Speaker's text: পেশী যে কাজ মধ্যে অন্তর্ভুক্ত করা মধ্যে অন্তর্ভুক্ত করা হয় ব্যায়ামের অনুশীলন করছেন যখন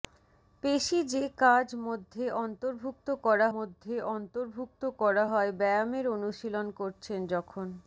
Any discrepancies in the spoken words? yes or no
no